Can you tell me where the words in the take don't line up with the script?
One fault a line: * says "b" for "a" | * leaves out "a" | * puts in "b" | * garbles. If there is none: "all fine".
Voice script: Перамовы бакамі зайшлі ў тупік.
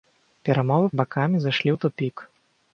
all fine